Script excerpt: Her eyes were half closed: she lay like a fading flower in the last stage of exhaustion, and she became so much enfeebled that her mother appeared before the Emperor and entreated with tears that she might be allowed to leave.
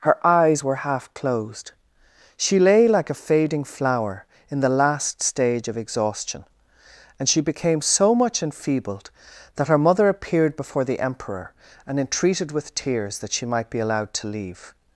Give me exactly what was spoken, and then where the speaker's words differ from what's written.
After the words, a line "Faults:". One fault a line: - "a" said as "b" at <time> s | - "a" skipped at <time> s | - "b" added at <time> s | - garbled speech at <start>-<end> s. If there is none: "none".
Her eyes were half closed: she lay like a fading flower in the last stage of exhaustion, and she became so much enfeebled that her mother appeared before the Emperor and entreated with tears that she might be allowed to leave.
Faults:
none